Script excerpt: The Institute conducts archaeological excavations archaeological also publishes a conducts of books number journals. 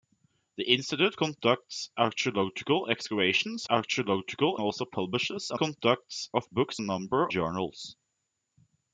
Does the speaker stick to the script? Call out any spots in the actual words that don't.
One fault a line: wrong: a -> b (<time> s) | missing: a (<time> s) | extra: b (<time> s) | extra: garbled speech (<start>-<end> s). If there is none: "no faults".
no faults